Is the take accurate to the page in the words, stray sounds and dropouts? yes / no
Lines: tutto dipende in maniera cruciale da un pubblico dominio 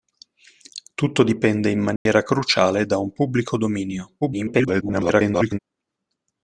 no